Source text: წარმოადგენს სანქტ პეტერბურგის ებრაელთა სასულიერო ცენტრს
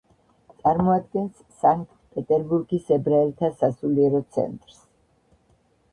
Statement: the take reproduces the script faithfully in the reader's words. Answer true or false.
true